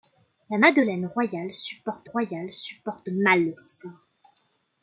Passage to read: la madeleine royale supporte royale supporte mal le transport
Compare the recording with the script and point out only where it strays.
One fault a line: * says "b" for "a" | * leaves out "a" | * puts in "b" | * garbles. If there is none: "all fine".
all fine